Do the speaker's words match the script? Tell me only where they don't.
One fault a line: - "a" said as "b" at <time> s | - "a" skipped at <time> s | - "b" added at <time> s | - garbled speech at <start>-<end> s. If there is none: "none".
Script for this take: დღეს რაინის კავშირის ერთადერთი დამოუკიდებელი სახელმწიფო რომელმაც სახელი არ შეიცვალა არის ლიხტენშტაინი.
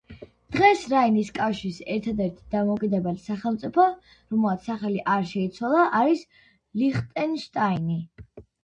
none